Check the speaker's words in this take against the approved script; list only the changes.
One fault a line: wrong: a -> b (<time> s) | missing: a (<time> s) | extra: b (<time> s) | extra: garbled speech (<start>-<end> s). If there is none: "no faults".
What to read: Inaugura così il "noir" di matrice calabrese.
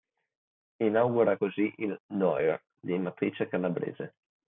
no faults